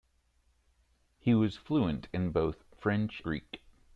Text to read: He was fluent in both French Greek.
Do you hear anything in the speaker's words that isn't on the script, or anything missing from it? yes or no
no